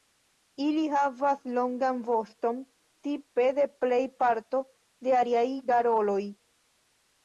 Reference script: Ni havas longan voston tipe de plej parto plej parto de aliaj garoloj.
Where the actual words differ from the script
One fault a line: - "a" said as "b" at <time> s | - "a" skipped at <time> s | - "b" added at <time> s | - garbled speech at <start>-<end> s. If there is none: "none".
- "Ni" said as "Ili" at 0.7 s
- "plej parto" skipped at 4.7 s